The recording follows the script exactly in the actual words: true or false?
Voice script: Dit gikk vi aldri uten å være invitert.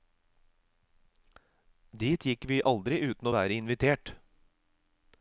true